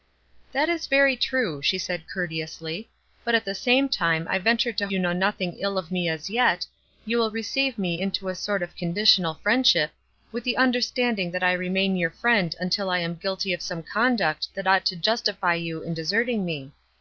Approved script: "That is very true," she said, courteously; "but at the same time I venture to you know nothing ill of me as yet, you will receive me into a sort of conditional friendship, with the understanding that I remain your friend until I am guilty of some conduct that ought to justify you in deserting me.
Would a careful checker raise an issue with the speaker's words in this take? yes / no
no